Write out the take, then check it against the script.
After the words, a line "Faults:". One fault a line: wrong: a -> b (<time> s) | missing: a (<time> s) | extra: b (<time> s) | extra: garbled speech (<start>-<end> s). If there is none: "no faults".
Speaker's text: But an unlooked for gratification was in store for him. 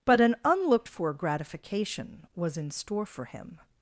But an unlooked for gratification was in store for him.
Faults:
no faults